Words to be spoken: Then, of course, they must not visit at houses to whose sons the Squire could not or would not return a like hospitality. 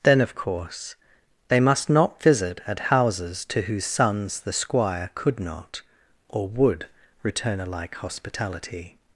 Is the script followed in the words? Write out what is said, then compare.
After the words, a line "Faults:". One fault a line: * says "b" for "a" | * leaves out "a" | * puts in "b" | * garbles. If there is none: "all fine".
Then, of course, they must not visit at houses to whose sons the Squire could not or would return a like hospitality.
Faults:
* leaves out "not"